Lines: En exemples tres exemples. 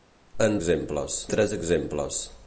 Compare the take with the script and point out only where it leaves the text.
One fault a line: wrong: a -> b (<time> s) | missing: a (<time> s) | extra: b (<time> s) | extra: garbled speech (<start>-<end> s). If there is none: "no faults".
no faults